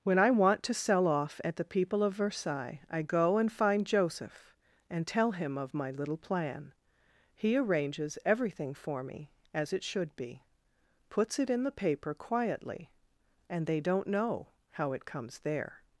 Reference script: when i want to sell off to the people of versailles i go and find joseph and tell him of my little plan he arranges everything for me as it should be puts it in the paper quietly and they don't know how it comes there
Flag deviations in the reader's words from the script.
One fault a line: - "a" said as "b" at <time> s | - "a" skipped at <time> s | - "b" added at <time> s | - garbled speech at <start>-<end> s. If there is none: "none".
- "to" said as "at" at 1.4 s